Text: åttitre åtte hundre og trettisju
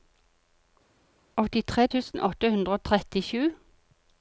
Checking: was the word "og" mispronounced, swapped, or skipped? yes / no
no